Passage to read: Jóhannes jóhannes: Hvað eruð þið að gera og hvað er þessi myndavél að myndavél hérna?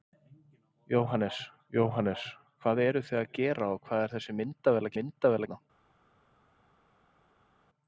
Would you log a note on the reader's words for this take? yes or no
no